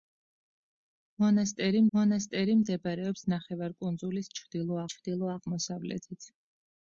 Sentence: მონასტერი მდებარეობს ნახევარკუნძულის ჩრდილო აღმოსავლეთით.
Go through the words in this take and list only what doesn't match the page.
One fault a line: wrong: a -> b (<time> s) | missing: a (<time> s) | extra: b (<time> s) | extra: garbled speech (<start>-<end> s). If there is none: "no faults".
extra: მონასტერი (2.0 s)
extra: ჩრდილო (4.9 s)